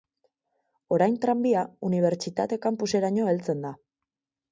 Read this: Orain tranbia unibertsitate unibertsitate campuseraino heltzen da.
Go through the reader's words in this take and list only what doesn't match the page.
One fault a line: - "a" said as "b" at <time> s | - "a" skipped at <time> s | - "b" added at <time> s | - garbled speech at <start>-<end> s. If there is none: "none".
- "unibertsitate" skipped at 2.6 s